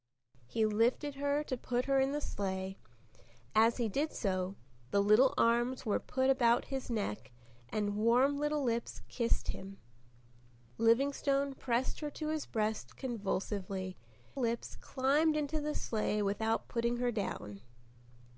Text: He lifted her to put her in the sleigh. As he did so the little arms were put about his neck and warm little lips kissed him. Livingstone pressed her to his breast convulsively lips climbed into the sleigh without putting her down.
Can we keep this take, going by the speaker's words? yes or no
yes